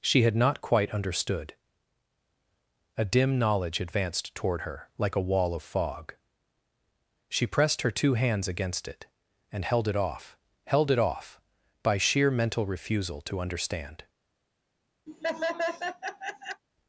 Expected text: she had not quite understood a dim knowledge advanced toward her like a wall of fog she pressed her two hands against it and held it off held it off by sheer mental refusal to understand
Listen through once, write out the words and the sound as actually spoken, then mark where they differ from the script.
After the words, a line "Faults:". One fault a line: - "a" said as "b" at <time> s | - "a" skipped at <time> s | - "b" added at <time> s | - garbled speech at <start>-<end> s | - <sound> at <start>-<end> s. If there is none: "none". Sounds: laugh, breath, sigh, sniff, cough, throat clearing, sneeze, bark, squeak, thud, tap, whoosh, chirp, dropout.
she had not quite understood a dim knowledge advanced toward her like a wall of fog she pressed her two hands against it and held it off held it off by sheer mental refusal to understand
Faults:
- laugh at 15.1-16.6 s